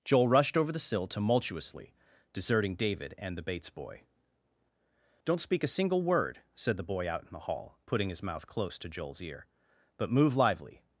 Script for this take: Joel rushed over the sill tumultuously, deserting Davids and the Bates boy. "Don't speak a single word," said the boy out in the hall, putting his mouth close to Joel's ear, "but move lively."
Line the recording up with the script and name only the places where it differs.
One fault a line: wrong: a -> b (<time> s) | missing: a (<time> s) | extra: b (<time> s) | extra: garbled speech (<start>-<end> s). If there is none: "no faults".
wrong: Davids -> David (2.8 s)